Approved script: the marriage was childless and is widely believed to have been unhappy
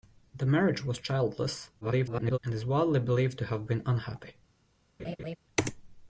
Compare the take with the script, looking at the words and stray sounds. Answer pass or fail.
fail